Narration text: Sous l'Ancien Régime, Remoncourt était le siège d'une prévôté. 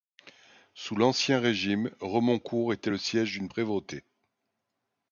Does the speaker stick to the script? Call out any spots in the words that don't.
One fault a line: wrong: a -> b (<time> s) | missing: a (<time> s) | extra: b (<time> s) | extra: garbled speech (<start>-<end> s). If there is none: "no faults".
no faults